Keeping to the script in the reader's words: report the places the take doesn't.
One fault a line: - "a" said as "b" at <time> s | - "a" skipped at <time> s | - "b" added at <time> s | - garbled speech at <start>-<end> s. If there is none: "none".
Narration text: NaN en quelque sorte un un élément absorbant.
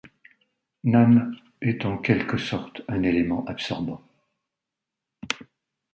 - "est" added at 1.6 s
- "un" skipped at 3.0 s